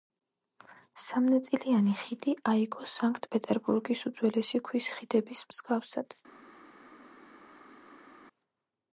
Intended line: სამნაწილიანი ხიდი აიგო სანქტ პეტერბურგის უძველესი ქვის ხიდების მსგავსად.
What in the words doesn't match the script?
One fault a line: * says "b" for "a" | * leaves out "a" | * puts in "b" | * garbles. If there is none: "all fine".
all fine